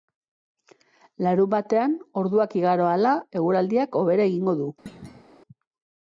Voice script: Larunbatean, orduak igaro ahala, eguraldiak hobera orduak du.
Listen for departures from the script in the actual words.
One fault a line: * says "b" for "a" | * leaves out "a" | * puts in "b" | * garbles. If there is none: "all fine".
* says "egingo" for "orduak"